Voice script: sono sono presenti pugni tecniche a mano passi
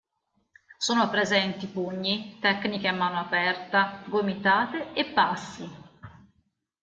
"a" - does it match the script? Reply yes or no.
yes